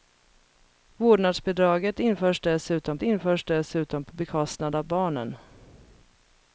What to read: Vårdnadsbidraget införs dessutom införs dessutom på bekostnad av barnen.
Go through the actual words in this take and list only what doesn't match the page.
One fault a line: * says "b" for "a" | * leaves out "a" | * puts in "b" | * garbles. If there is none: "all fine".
all fine